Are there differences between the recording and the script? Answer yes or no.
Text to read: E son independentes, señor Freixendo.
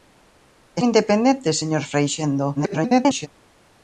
yes